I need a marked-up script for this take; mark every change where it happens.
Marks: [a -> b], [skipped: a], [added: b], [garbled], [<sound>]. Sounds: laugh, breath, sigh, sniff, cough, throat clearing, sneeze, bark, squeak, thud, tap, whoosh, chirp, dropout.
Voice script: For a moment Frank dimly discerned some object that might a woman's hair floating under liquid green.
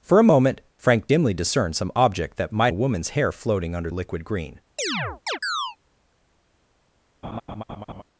For a moment Frank dimly discerned some object that might a woman's hair floating under liquid green. [chirp] [laugh]